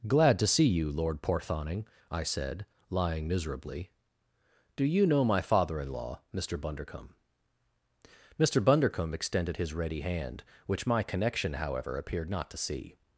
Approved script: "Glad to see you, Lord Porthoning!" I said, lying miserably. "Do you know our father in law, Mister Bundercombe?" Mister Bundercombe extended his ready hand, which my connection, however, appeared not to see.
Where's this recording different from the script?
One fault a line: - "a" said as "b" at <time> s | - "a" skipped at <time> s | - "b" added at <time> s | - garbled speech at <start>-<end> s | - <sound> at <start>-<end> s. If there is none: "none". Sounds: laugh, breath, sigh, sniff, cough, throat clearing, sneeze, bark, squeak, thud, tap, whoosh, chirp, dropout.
- "our" said as "my" at 5.2 s